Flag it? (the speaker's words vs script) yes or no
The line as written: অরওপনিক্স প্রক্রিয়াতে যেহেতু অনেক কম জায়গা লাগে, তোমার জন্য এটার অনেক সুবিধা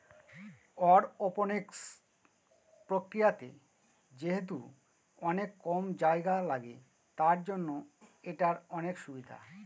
yes